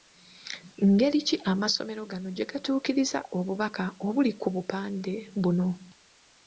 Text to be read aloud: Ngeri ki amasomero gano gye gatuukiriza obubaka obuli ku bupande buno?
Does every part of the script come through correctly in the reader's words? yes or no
yes